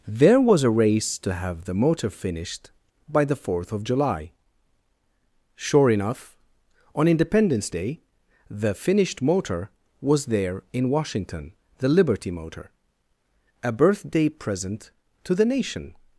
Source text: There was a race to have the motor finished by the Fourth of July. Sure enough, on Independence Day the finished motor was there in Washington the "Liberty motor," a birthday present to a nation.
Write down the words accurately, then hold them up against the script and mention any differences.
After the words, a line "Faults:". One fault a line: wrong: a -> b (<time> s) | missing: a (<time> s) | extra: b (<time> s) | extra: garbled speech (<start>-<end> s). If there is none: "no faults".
There was a race to have the motor finished by the Fourth of July. Sure enough, on Independence Day the finished motor was there in Washington the "Liberty motor," a birthday present to the nation.
Faults:
wrong: a -> the (15.4 s)